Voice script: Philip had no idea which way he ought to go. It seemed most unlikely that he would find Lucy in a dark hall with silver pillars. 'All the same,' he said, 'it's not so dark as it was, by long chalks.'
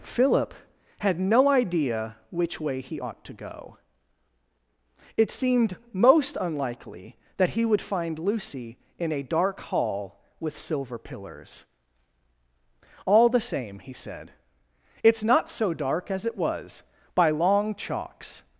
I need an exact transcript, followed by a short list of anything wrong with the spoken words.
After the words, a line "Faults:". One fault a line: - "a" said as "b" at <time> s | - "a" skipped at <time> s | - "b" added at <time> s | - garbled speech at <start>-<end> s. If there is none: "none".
Philip had no idea which way he ought to go. It seemed most unlikely that he would find Lucy in a dark hall with silver pillars. 'All the same,' he said, 'it's not so dark as it was, by long chalks.'
Faults:
none